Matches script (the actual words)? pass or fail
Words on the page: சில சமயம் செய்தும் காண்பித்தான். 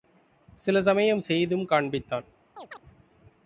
pass